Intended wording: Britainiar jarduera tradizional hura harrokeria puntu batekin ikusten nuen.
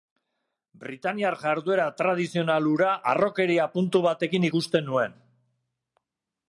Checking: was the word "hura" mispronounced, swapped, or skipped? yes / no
no